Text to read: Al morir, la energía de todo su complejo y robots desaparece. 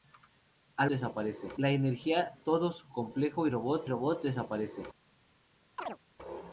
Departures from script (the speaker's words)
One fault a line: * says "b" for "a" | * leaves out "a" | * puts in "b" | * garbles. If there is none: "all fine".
* says "desaparece" for "morir"
* leaves out "de"
* puts in "robots"